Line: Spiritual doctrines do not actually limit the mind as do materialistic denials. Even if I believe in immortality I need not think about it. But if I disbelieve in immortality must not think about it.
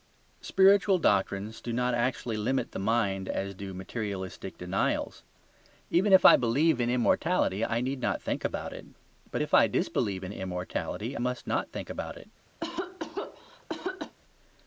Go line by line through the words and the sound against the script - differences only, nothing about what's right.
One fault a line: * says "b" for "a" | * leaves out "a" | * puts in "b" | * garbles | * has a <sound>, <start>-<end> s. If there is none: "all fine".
* has a cough, 12.6-14.2 s